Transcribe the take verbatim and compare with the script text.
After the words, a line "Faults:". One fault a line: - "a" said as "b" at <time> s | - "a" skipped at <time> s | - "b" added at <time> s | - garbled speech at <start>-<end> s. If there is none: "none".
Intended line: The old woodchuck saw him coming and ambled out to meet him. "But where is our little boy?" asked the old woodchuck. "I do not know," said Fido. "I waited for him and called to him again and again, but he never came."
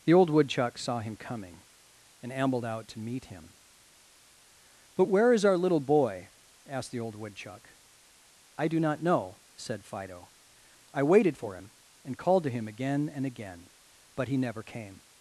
The old woodchuck saw him coming and ambled out to meet him. "But where is our little boy?" asked the old woodchuck. "I do not know," said Fido. "I waited for him and called to him again and again, but he never came."
Faults:
none